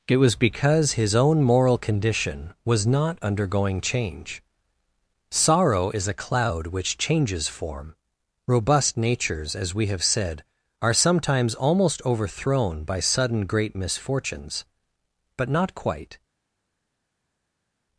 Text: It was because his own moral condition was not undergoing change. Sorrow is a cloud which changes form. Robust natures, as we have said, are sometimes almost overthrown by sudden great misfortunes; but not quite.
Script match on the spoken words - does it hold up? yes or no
yes